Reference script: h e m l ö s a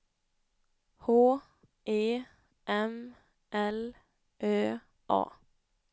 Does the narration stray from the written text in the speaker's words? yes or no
yes